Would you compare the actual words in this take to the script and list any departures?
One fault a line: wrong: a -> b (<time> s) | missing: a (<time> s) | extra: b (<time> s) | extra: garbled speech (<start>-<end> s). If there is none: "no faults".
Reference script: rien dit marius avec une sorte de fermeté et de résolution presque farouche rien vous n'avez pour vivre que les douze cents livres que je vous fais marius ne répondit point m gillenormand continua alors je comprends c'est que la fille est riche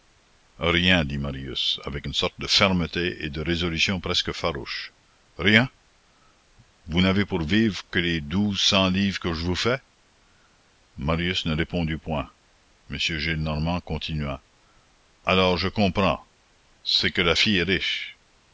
no faults